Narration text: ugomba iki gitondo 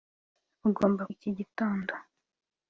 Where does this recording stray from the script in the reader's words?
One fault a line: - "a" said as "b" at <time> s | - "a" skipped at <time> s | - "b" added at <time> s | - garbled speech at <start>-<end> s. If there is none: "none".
none